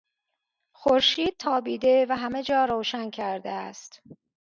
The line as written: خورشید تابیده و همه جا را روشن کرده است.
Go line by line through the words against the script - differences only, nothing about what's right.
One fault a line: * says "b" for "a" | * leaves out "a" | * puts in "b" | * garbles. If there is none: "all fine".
* leaves out "را"